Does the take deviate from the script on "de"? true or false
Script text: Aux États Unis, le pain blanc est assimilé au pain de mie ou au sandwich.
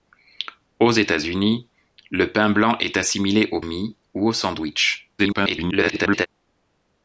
true